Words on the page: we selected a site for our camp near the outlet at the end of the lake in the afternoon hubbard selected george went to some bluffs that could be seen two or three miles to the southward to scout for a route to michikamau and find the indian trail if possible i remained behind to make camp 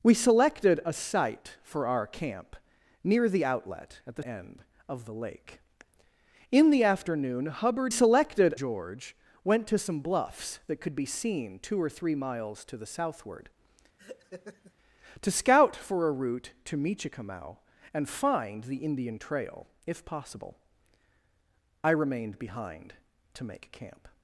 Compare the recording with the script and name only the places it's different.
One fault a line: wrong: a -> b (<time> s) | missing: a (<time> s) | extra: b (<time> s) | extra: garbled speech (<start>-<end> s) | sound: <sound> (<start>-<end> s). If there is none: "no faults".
sound: laugh (14.0-14.7 s)